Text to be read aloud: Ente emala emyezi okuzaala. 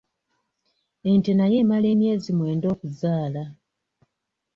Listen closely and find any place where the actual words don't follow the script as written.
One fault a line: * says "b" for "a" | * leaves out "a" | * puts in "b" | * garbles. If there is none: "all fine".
* puts in "nayo"
* puts in "mwenda"